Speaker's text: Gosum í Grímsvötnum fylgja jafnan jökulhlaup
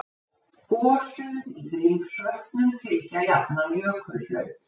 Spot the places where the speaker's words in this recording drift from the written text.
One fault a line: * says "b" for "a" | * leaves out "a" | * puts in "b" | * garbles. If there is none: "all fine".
all fine